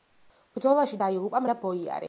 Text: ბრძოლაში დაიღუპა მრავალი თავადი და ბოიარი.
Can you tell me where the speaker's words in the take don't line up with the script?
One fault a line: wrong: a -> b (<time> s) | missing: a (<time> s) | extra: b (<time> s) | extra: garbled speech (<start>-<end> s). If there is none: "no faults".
missing: მრავალი თავადი (1.4 s)